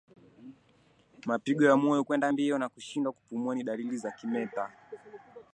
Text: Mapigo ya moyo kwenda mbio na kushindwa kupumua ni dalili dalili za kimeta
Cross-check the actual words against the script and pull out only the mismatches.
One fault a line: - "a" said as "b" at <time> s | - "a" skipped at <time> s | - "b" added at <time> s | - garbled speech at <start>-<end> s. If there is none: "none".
- "dalili" skipped at 4.0 s